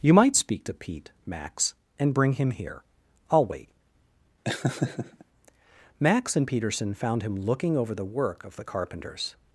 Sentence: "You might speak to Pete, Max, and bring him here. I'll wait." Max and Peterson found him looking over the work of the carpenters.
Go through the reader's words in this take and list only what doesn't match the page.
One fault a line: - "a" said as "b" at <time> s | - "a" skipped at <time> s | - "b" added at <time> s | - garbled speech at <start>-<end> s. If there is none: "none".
none